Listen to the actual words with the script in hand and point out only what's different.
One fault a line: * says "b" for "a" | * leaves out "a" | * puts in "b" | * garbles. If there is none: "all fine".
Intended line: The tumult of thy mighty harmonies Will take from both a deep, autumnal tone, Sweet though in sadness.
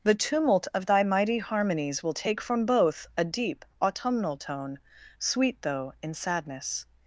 all fine